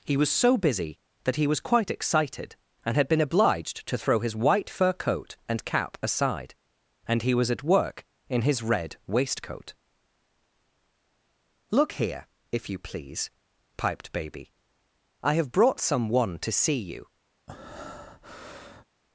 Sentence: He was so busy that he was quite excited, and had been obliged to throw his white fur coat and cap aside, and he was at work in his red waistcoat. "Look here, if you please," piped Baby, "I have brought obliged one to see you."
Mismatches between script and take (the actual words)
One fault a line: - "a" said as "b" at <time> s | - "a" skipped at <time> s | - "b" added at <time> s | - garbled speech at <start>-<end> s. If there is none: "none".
- "obliged" said as "some" at 15.8 s